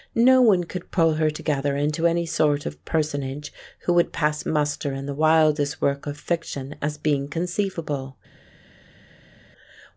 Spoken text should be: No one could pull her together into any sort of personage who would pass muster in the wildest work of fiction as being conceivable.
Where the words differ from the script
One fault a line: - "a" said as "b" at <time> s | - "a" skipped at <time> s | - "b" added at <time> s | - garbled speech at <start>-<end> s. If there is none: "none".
none